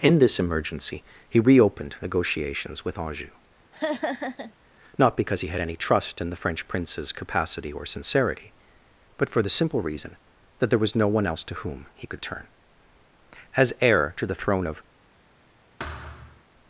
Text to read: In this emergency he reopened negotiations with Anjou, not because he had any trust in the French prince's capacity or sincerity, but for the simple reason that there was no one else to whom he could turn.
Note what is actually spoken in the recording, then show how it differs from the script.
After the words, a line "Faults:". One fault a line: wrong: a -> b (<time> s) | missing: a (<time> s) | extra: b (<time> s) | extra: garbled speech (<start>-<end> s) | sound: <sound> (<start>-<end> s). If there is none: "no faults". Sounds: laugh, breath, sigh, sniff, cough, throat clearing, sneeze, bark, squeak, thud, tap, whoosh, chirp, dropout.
In this emergency he reopened negotiations with Anjou, not because he had any trust in the French prince's capacity or sincerity, but for the simple reason that there was no one else to whom he could turn. As heir to the throne of
Faults:
sound: laugh (3.7-4.6 s)
extra: As heir to the throne of (13.6 s)
sound: thud (15.8-16.4 s)